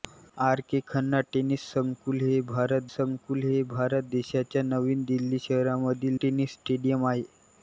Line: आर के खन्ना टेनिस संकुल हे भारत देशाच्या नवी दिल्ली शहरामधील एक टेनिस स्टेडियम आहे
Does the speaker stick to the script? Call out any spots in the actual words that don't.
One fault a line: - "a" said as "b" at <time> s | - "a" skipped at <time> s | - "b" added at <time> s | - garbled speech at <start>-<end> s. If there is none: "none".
- "संकुल हे भारत" added at 2.9 s
- "एक" skipped at 6.2 s